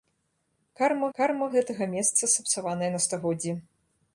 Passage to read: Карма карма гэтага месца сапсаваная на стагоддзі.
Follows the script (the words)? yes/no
yes